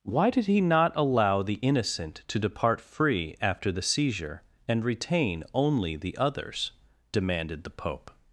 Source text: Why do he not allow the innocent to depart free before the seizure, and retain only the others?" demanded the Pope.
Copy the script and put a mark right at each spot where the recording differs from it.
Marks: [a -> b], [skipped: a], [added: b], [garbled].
Why [do -> did] he not allow the innocent to depart free [before -> after] the seizure, and retain only the others?" demanded the Pope.